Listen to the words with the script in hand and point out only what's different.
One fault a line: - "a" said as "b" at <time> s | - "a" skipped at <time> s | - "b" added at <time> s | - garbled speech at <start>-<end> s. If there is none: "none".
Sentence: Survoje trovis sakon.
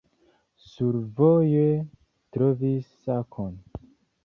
none